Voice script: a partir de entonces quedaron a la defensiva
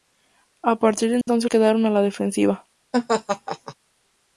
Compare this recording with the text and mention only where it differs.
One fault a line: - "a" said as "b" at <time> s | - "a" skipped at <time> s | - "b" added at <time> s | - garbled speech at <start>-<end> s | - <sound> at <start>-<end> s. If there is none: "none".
- dropout at 1.2-1.3 s
- laugh at 2.9-3.7 s